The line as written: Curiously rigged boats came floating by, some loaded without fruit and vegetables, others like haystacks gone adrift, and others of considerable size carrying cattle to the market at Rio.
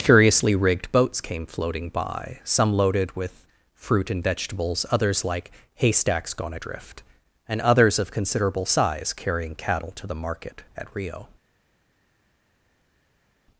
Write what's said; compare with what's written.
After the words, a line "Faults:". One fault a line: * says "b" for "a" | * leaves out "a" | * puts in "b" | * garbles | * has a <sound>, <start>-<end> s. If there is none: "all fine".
Curiously rigged boats came floating by, some loaded with fruit and vegetables, others like haystacks gone adrift, and others of considerable size carrying cattle to the market at Rio.
Faults:
* says "with" for "without"